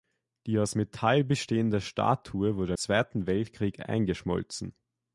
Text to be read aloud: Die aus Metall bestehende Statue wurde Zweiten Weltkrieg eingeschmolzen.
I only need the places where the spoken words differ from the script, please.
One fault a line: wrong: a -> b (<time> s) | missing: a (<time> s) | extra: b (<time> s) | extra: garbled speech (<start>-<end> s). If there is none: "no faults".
no faults